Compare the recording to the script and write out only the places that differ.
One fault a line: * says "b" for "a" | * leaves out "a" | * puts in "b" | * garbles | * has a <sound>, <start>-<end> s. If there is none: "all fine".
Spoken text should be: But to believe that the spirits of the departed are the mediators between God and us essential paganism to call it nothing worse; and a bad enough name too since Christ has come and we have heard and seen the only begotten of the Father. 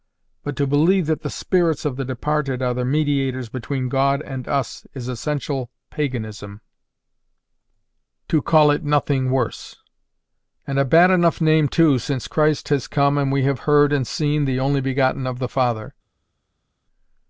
* puts in "is"